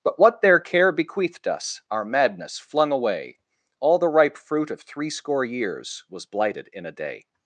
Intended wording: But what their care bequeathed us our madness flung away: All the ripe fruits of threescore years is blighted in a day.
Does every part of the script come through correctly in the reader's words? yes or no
no